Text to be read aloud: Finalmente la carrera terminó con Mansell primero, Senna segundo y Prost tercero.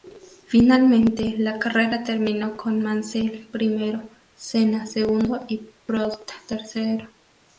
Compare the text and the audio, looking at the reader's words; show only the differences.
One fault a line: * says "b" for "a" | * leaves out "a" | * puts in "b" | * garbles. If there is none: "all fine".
all fine